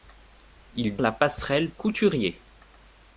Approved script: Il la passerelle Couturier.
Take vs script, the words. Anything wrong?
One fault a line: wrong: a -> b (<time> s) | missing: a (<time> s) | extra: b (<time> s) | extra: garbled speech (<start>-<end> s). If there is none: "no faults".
no faults